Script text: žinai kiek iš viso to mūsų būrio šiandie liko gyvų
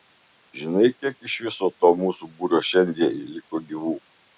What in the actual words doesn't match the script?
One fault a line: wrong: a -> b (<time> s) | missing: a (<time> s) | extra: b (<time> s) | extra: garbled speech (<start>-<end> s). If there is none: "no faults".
no faults